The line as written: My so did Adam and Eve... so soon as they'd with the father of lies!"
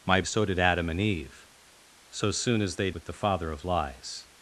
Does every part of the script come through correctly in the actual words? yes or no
yes